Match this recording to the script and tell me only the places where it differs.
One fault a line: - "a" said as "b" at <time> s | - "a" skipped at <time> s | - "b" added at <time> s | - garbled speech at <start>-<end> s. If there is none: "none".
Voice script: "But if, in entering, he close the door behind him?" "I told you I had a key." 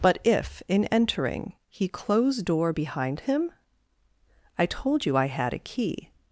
- "the" skipped at 2.4 s